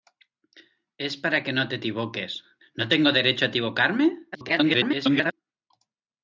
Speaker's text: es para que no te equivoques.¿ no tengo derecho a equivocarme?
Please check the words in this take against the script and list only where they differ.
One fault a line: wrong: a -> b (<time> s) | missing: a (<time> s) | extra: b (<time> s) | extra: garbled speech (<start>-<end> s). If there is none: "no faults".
extra: garbled speech (4.3-5.3 s)